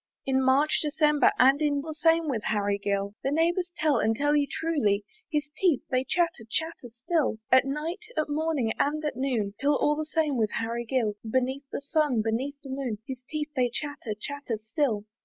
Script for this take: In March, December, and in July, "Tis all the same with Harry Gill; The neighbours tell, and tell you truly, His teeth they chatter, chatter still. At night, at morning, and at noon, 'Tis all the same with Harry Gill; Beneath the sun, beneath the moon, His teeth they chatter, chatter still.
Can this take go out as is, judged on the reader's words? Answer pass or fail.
fail